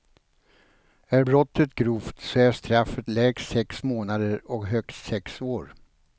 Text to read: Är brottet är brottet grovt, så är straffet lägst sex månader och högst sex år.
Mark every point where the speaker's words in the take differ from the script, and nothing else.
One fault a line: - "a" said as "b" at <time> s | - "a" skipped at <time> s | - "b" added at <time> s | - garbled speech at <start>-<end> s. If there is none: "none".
- "är brottet" skipped at 1.7 s